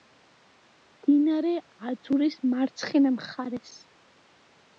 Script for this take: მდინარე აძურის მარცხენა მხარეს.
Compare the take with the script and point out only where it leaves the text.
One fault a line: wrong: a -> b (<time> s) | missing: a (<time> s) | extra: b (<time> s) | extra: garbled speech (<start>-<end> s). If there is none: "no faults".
no faults